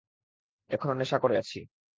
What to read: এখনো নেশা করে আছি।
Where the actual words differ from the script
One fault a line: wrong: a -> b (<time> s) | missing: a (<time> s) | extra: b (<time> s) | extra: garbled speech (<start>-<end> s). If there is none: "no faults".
no faults